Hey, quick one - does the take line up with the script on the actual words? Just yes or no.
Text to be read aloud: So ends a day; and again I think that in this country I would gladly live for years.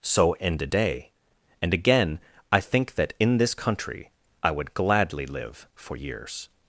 no